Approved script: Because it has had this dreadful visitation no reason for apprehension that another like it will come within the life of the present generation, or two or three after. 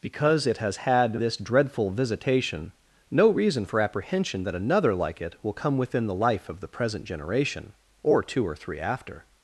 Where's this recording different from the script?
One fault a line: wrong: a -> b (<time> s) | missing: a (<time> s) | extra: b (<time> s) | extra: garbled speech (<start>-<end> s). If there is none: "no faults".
no faults